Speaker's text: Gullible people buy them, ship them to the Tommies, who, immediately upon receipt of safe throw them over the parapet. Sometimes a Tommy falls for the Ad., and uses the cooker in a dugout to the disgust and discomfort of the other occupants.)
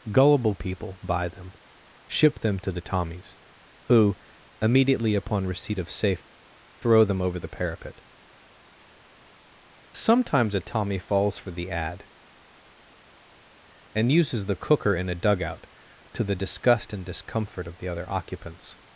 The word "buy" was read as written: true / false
true